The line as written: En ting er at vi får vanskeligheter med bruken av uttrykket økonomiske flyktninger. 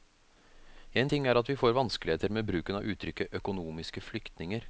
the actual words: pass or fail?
pass